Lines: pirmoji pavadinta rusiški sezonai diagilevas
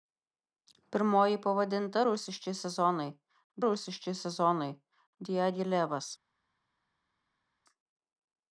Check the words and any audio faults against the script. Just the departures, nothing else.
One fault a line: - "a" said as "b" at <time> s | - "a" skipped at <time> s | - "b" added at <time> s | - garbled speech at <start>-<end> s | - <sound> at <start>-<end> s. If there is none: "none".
- "rusiški sezonai" added at 3.7 s